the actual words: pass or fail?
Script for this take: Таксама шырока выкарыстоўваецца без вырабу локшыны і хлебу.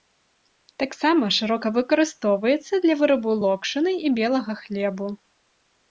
fail